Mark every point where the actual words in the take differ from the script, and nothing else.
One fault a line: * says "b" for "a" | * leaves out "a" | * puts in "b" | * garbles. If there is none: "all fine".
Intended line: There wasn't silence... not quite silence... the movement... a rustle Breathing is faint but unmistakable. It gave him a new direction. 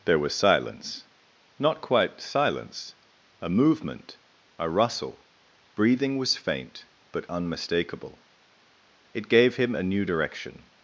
* says "was" for "wasn't"
* says "a" for "the"
* says "was" for "is"